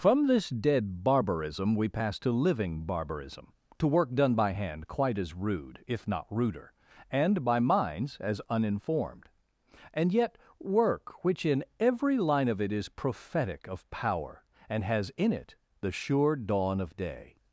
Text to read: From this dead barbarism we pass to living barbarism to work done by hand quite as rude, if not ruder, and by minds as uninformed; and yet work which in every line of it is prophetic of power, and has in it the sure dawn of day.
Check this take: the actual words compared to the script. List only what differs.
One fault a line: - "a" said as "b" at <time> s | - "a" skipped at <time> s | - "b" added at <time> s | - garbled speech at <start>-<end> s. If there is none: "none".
none